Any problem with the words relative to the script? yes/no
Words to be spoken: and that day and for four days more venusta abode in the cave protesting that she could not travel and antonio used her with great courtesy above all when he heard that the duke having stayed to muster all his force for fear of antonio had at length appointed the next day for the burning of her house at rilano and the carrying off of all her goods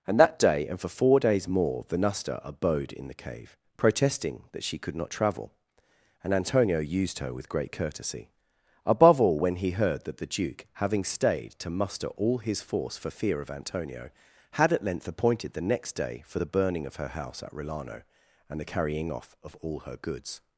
no